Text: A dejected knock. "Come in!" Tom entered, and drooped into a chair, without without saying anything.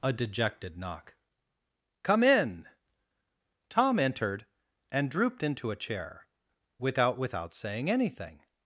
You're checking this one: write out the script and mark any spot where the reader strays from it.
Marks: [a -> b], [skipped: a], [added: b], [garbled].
A dejected knock. "Come in!" Tom entered, and drooped into a chair, without without saying anything.